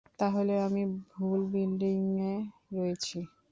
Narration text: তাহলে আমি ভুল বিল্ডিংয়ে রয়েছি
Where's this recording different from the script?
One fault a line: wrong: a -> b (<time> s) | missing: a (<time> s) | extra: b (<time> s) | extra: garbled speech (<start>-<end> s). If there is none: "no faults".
no faults